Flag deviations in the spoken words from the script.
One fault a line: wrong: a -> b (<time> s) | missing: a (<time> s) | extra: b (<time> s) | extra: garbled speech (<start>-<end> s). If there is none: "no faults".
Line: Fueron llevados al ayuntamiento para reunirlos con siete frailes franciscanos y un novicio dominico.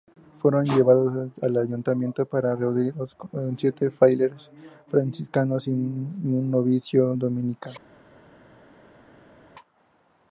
no faults